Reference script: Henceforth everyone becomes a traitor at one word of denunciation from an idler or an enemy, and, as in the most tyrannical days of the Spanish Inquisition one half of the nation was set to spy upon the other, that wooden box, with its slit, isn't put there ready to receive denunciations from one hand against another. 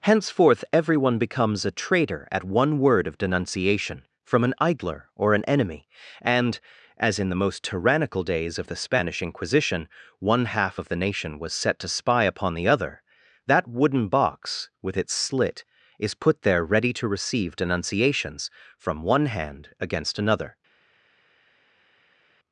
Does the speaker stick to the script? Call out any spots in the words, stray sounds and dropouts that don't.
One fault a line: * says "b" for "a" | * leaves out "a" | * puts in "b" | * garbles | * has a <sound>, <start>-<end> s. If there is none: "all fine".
* says "is" for "isn't"